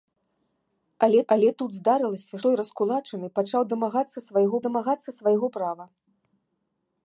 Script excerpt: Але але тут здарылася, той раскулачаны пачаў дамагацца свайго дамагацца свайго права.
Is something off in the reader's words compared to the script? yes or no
no